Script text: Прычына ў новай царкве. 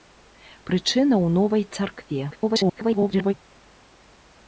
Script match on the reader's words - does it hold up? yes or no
no